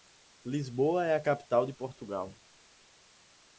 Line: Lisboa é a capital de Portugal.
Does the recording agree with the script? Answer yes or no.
yes